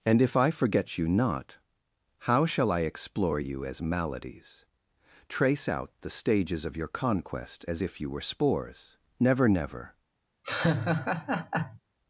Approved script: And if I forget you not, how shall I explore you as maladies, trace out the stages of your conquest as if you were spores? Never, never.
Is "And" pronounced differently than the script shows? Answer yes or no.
no